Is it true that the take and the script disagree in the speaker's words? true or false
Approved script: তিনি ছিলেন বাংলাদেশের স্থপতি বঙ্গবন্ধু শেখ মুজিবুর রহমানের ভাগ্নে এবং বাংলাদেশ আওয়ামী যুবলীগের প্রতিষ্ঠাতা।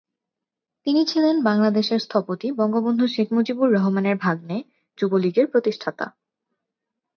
true